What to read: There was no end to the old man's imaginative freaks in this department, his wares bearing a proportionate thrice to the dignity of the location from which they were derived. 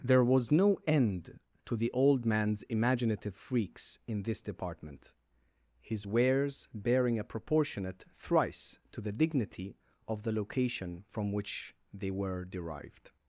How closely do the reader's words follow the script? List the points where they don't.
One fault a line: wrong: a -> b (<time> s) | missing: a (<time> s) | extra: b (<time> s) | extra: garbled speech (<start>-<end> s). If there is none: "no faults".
no faults